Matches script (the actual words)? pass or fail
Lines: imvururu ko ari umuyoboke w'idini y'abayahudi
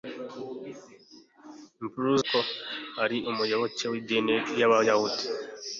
pass